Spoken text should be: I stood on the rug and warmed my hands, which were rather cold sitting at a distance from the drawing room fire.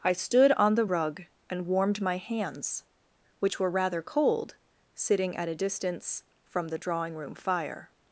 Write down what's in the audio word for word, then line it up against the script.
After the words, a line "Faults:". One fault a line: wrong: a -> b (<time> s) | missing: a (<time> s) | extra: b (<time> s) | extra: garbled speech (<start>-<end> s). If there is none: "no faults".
I stood on the rug and warmed my hands, which were rather cold sitting at a distance from the drawing room fire.
Faults:
no faults